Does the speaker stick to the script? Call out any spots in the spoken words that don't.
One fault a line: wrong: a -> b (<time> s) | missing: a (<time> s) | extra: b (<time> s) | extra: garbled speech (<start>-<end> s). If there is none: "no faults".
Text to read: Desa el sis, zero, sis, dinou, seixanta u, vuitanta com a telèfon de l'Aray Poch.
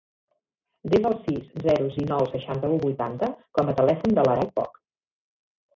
missing: sis (1.9 s)